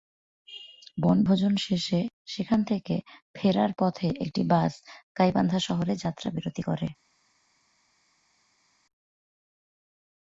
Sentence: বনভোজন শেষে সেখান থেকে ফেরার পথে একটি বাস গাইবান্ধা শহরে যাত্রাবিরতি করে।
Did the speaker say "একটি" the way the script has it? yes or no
yes